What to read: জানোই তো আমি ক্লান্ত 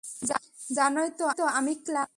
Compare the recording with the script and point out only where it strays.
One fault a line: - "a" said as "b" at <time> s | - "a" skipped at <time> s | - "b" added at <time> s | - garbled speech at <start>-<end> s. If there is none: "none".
- "তো" added at 1.3 s